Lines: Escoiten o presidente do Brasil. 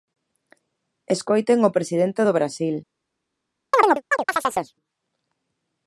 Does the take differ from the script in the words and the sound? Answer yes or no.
yes